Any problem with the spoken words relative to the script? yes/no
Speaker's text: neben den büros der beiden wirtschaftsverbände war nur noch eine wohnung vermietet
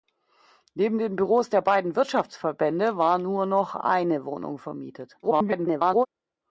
yes